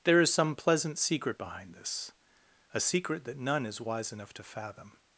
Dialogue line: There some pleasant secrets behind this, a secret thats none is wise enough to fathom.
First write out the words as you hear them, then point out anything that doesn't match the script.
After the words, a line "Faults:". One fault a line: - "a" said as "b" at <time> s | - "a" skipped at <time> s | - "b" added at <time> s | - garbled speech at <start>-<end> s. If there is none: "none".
There is some pleasant secret behind this, a secret that none is wise enough to fathom.
Faults:
- "is" added at 0.2 s
- "secrets" said as "secret" at 1.0 s
- "thats" said as "that" at 3.2 s